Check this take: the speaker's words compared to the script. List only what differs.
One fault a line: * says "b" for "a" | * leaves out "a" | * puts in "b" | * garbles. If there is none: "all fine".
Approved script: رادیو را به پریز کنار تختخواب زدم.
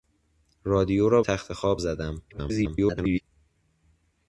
* leaves out "به پریز کنار"
* garbles